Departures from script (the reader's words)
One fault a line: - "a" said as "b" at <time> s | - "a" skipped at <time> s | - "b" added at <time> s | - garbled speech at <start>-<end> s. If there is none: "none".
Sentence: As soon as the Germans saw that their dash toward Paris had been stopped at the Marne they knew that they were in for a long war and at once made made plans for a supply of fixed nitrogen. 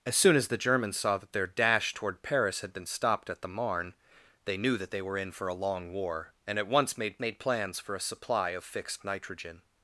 none